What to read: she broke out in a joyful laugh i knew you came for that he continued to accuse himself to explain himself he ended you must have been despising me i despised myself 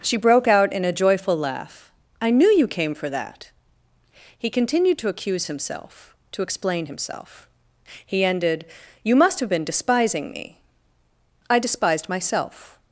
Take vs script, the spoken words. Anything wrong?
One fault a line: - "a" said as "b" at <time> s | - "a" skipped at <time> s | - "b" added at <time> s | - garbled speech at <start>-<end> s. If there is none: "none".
none